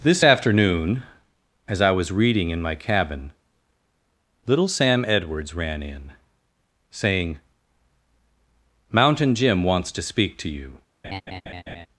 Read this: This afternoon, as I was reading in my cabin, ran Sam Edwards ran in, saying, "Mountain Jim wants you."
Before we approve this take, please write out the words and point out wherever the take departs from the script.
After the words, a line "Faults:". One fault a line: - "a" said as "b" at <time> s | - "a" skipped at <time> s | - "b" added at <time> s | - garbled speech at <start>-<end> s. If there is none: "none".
This afternoon, as I was reading in my cabin, little Sam Edwards ran in, saying, "Mountain Jim wants to speak to you."
Faults:
- "ran" said as "little" at 4.5 s
- "to speak to" added at 9.9 s